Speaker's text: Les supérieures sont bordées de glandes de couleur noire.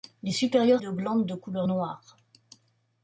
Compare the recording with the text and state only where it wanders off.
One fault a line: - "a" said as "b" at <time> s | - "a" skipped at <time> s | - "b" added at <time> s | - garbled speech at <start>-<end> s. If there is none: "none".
- "sont bordées" skipped at 0.8 s